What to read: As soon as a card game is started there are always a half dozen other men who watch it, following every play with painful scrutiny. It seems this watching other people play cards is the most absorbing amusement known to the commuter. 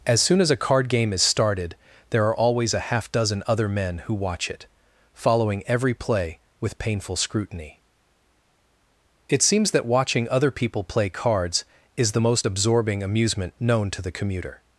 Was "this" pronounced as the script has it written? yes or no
no